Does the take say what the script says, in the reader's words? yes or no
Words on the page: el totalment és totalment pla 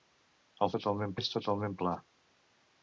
yes